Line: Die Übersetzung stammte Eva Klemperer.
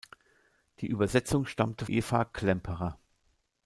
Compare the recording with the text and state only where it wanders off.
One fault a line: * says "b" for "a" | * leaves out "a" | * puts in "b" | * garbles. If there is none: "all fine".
all fine